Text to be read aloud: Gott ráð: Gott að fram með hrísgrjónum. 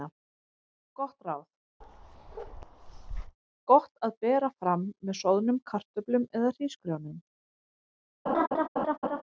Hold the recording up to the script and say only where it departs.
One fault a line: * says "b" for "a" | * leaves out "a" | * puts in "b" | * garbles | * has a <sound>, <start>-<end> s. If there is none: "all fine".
* has a bark, 1.8-3.4 s
* puts in "bera"
* puts in "soðnum kartöflum eða"
* has a laugh, 8.3-9.2 s